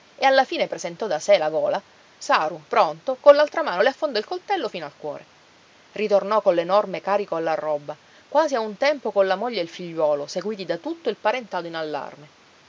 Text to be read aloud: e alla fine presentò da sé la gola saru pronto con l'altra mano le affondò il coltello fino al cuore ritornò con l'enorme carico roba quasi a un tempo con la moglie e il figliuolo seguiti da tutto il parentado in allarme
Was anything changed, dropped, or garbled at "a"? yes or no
no